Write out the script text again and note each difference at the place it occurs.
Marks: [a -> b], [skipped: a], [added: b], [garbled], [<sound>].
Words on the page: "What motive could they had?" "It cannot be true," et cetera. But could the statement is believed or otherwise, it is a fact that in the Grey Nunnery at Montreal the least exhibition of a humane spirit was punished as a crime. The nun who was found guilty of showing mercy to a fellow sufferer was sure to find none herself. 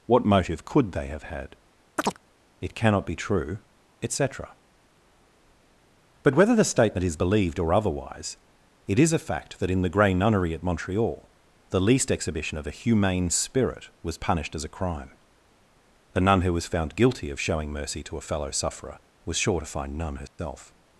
"What motive could they [added: have] had?" [chirp] "It cannot be true," et cetera. But [could -> whether] the statement is believed or otherwise, it is a fact that in the Grey Nunnery at Montreal the least exhibition of a humane spirit was punished as a crime. The nun who was found guilty of showing mercy to a fellow sufferer was sure to find none herself. [dropout]